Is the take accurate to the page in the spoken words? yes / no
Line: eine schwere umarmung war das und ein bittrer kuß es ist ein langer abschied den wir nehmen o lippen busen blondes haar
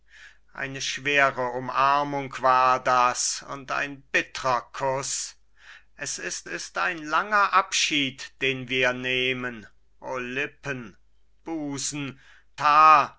no